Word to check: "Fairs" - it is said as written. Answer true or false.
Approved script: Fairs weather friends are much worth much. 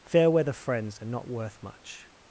false